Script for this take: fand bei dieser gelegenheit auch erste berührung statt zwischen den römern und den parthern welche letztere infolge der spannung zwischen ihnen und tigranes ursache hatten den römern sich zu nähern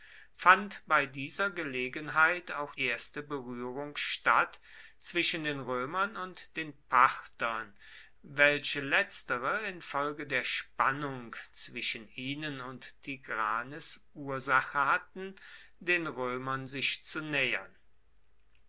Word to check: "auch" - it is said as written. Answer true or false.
true